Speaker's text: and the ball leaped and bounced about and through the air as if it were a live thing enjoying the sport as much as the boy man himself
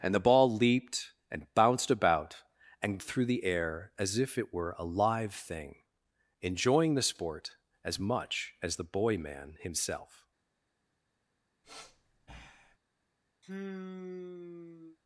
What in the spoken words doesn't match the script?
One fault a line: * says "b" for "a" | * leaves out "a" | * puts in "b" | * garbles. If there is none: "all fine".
all fine